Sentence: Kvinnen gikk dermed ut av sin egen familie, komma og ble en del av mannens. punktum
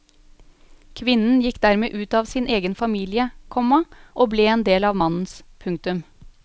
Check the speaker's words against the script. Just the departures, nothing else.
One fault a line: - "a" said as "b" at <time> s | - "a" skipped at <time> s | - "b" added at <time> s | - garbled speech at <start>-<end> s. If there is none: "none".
none